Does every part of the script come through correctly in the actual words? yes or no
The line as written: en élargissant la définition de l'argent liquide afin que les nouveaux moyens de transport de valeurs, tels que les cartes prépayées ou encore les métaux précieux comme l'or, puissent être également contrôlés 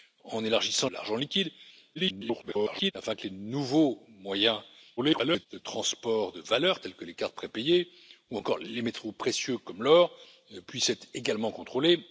no